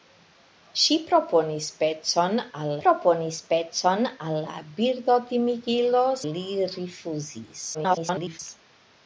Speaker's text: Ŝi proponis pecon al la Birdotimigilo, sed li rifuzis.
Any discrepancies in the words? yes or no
yes